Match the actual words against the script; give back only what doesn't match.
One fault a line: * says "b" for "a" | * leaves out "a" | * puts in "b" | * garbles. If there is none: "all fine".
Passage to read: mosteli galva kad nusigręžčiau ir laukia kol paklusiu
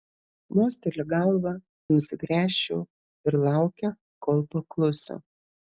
* leaves out "kad"